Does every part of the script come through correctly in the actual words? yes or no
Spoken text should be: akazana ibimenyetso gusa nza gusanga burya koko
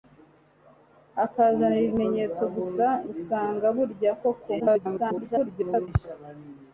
no